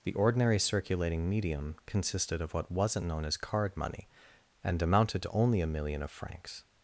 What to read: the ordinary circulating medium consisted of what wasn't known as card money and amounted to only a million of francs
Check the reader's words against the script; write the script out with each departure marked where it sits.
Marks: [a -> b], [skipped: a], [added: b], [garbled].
the ordinary circulating medium consisted of what wasn't known as card money and amounted to only a million of francs